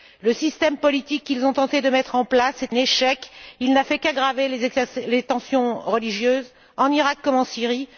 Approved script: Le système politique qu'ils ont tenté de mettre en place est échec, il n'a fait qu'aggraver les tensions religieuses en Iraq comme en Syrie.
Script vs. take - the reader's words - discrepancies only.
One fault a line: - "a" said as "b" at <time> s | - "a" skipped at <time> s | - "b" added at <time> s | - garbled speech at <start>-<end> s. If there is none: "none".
none